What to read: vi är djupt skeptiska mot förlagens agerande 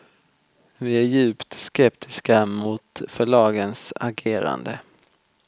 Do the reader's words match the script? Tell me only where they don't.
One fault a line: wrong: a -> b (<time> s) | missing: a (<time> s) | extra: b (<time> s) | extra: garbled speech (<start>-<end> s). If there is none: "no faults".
no faults